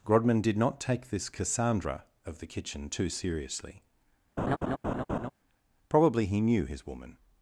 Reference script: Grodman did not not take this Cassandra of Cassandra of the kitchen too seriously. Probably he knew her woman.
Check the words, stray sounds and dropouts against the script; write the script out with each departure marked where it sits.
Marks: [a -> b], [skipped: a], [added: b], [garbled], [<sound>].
Grodman did not [skipped: not] take this Cassandra of [skipped: Cassandra of] the kitchen too seriously. [laugh] Probably he knew [her -> his] woman.